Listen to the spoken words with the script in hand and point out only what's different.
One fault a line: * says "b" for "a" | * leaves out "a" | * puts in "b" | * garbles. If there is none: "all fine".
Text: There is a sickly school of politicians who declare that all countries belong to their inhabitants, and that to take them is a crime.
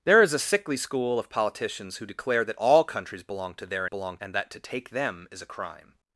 * says "belong" for "inhabitants"